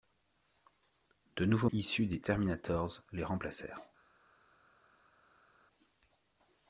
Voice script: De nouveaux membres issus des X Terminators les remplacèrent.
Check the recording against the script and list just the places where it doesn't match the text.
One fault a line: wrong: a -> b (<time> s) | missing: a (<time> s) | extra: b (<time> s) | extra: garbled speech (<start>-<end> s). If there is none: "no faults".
missing: membres (1.7 s)
missing: X (2.2 s)